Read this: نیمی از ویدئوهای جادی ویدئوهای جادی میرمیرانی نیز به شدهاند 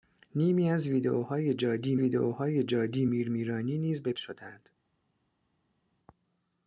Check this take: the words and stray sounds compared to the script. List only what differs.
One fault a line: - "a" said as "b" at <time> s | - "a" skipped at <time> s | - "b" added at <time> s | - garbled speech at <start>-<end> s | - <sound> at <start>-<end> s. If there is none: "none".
none